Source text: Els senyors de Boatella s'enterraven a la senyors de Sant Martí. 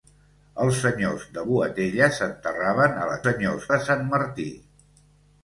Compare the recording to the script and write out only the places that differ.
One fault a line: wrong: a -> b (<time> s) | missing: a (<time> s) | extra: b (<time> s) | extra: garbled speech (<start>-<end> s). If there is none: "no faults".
no faults